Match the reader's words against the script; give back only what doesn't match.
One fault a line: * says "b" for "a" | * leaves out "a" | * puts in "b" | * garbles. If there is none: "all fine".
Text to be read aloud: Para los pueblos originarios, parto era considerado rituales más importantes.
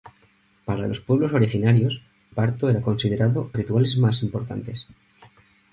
all fine